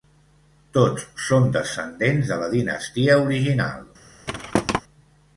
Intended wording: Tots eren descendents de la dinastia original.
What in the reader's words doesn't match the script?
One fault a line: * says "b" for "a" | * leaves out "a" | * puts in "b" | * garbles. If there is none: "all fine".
* says "són" for "eren"